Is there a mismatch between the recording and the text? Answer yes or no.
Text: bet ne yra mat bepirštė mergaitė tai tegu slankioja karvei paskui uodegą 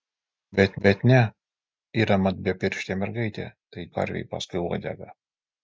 yes